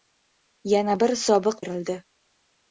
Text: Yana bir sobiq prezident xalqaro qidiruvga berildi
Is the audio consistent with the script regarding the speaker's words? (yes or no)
no